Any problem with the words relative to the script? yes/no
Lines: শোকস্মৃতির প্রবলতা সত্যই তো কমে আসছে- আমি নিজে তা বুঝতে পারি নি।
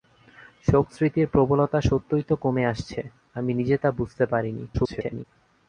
yes